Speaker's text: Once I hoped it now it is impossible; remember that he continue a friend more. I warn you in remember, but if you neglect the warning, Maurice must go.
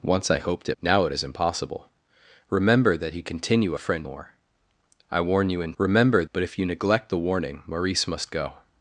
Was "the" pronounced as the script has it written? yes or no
yes